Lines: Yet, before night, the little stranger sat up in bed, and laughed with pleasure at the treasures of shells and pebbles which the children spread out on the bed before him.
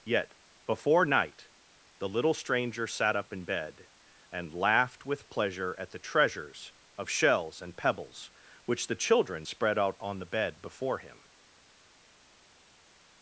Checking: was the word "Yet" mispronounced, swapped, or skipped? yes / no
no